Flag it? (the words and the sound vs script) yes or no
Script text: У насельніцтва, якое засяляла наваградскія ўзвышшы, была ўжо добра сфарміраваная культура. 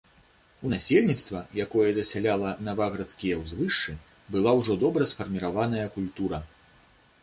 no